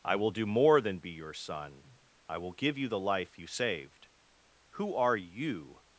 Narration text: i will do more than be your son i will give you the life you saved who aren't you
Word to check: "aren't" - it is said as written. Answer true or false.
false